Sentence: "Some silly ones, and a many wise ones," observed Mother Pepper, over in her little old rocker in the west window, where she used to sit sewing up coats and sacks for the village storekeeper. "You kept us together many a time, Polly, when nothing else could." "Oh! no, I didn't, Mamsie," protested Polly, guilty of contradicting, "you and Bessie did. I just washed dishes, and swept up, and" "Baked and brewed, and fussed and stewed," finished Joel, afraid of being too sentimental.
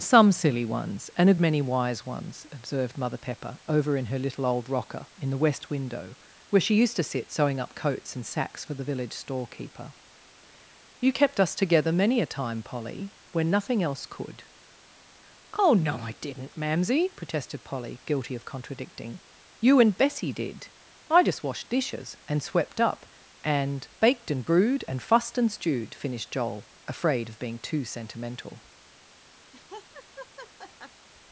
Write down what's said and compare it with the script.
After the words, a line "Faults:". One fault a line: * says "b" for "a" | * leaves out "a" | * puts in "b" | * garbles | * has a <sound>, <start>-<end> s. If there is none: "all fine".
"Some silly ones, and a many wise ones," observed Mother Pepper, over in her little old rocker in the west window, where she used to sit sewing up coats and sacks for the village storekeeper. "You kept us together many a time, Polly, when nothing else could." "Oh! no, I didn't, Mamsie," protested Polly, guilty of contradicting, "you and Bessie did. I just washed dishes, and swept up, and" "Baked and brewed, and fussed and stewed," finished Joel, afraid of being too sentimental.
Faults:
* has a laugh, 29.5-31.1 s